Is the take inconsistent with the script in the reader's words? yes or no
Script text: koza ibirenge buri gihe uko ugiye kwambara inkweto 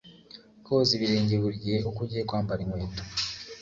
no